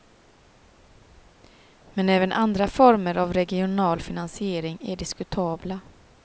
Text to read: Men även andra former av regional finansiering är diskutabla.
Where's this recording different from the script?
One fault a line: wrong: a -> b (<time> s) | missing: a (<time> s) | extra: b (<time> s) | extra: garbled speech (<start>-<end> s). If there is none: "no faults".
no faults